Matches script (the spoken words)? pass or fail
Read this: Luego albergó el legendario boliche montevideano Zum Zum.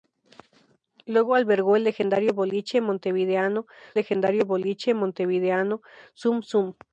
fail